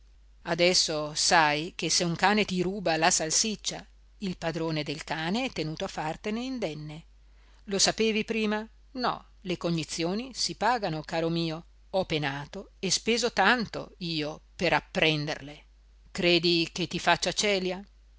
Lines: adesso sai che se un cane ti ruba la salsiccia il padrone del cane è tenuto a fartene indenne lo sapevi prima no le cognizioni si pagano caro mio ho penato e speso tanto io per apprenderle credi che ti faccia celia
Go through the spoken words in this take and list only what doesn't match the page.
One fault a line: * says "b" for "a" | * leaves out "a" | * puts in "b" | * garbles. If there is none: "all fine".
all fine